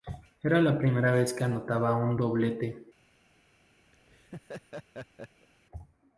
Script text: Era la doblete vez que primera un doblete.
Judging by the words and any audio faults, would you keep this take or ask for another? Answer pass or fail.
fail